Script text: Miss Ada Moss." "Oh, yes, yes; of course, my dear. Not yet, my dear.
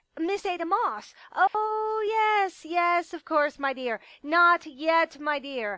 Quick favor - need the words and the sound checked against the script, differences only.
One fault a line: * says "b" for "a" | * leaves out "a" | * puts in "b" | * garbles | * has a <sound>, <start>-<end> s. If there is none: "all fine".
* has a dropout, 1.5-1.5 s